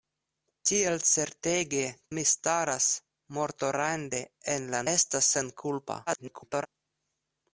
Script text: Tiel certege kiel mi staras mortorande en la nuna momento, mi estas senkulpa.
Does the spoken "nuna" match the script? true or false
false